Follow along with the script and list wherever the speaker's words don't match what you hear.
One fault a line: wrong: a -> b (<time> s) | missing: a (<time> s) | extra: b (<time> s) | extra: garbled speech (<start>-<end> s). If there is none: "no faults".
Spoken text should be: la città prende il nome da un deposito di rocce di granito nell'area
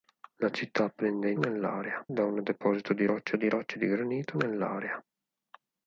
wrong: nome -> nell'area (1.4 s)
extra: rocce di (3.5 s)